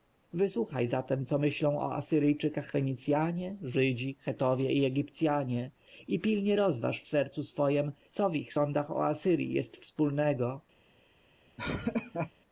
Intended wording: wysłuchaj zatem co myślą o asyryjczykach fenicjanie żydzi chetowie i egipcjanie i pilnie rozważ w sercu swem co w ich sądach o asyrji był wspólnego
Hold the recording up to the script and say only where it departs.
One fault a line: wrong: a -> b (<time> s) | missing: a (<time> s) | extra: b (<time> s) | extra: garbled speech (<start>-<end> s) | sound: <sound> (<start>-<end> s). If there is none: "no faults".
wrong: był -> jest (9.5 s)
sound: laugh (11.6-12.3 s)